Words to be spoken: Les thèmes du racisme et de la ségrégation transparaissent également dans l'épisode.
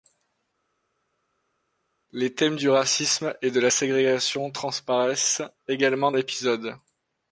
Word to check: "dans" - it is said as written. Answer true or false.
false